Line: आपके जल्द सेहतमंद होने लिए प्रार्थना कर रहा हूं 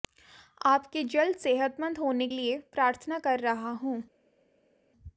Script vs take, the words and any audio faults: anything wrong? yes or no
no